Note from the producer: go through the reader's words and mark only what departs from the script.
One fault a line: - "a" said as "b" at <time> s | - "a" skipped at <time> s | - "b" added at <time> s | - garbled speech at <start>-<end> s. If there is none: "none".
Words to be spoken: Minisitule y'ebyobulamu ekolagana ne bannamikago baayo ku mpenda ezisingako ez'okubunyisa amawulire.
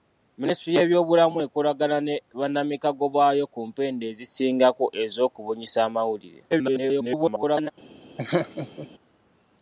- garbled speech at 6.5-7.7 s